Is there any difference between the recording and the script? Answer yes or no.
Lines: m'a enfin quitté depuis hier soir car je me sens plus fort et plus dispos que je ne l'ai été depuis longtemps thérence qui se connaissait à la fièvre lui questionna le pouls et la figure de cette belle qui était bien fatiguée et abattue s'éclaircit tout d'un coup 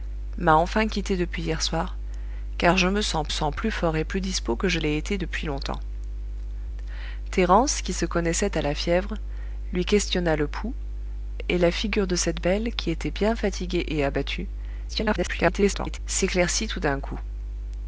yes